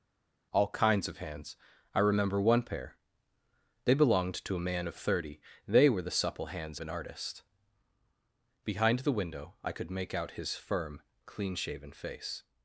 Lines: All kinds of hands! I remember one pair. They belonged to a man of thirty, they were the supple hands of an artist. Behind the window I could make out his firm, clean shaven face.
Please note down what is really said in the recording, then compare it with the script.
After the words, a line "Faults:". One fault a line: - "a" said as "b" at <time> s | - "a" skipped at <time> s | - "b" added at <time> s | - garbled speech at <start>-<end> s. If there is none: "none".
All kinds of hands! I remember one pair. They belonged to a man of thirty, they were the supple hands an artist. Behind the window I could make out his firm, clean shaven face.
Faults:
- "of" skipped at 6.8 s